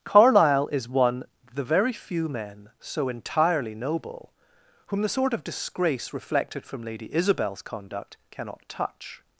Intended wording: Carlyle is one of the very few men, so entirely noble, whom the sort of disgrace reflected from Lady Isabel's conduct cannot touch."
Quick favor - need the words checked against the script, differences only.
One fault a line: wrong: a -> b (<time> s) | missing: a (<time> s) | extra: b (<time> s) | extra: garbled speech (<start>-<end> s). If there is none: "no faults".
missing: of (1.2 s)